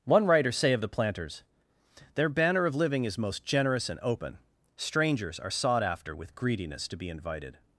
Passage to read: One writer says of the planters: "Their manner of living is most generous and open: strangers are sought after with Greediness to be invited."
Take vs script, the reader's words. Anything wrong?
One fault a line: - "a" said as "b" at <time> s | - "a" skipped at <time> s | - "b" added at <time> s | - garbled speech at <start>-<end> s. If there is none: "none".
- "says" said as "say" at 0.5 s
- "manner" said as "banner" at 2.3 s